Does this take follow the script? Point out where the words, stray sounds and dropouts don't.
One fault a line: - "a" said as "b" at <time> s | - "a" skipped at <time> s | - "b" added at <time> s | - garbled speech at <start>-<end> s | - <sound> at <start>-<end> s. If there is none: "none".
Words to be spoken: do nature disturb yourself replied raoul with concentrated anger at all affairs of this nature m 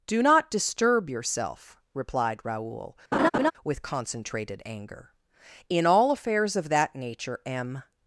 - "nature" said as "not" at 0.2 s
- laugh at 3.1-3.5 s
- "at" said as "in" at 5.7 s
- "this" said as "that" at 6.7 s